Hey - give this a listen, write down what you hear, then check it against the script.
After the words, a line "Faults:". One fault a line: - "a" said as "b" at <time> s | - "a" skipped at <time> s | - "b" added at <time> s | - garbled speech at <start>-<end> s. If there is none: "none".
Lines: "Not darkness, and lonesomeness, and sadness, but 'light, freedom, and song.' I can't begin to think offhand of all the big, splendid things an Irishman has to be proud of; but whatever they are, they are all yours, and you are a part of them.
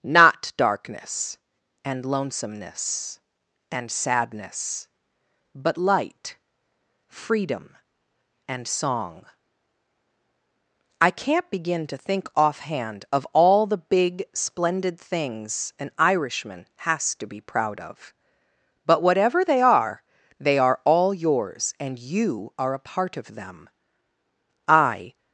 "Not darkness, and lonesomeness, and sadness, but 'light, freedom, and song.' I can't begin to think offhand of all the big, splendid things an Irishman has to be proud of; but whatever they are, they are all yours, and you are a part of them. I
Faults:
- "I" added at 24.7 s